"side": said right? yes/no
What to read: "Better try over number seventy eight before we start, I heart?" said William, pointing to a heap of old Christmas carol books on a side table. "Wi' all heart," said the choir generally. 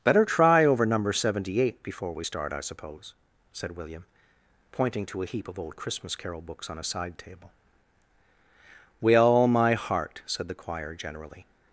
yes